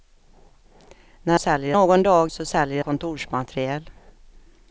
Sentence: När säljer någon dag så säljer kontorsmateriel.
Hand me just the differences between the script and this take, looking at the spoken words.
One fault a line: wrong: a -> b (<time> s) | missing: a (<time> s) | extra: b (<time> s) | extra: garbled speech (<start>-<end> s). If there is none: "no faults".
no faults